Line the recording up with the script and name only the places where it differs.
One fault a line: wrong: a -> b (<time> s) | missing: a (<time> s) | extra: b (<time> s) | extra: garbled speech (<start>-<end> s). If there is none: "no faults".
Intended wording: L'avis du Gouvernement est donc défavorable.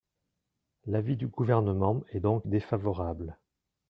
no faults